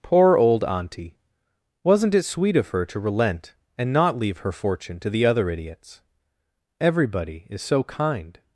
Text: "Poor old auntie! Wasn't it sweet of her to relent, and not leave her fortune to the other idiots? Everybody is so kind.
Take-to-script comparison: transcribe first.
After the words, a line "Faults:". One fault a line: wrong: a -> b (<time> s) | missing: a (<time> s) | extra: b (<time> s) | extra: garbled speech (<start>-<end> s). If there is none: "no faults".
"Poor old auntie! Wasn't it sweet of her to relent, and not leave her fortune to the other idiots? Everybody is so kind.
Faults:
no faults